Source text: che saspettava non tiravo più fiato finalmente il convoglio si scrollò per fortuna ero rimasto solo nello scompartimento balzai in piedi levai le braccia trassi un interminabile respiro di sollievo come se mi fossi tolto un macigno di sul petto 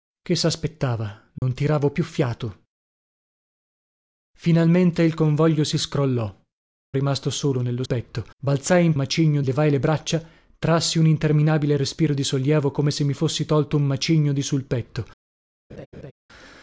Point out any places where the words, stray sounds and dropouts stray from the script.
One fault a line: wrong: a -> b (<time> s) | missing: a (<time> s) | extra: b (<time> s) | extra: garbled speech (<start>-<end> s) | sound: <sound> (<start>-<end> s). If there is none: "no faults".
sound: dropout (1.4-1.4 s)
missing: per fortuna ero (6.4 s)
wrong: scompartimento -> petto (7.8 s)
wrong: piedi -> macigno (8.9 s)
sound: laugh (15.7-16.1 s)